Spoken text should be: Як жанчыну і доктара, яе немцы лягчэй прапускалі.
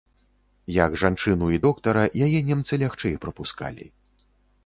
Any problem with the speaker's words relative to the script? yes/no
no